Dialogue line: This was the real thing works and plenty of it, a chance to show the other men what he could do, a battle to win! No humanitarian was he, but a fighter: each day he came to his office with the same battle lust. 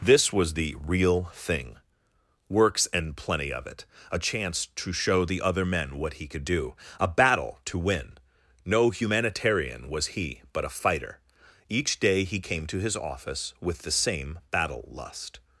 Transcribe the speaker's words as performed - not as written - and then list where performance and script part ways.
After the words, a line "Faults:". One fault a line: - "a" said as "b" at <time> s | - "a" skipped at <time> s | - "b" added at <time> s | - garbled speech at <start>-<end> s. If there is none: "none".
This was the real thing works and plenty of it, a chance to show the other men what he could do, a battle to win! No humanitarian was he, but a fighter: each day he came to his office with the same battle lust.
Faults:
none